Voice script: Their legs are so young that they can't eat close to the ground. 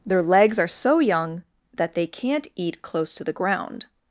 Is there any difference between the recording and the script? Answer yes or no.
no